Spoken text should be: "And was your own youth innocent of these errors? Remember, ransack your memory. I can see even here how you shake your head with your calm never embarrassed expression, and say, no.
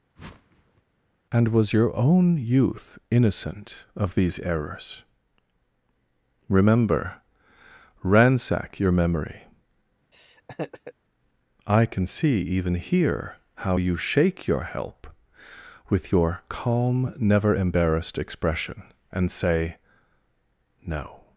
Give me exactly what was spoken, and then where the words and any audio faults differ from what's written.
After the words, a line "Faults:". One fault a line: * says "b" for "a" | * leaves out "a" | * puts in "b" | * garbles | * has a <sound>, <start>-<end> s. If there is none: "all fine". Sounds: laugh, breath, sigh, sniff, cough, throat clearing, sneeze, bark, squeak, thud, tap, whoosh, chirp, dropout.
"And was your own youth innocent of these errors? Remember, ransack your memory. I can see even here how you shake your help with your calm never embarrassed expression, and say, no.
Faults:
* has a whoosh, 0.2-0.8 s
* has a laugh, 10.1-10.9 s
* says "help" for "head"